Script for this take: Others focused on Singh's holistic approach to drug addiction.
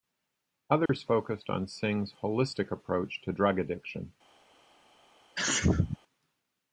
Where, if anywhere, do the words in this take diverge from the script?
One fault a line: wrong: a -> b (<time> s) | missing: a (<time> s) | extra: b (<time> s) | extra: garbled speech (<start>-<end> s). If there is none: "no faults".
no faults